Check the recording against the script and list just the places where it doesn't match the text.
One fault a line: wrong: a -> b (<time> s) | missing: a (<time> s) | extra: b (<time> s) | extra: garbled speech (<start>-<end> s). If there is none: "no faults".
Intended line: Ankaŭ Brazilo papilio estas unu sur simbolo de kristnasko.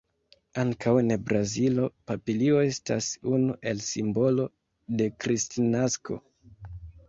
extra: en (1.0 s)
wrong: sur -> el (3.8 s)